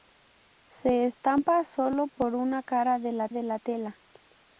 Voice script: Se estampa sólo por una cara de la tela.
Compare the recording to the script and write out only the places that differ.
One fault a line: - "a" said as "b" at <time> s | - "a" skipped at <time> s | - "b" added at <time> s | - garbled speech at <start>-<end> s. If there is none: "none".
- "de la" added at 3.3 s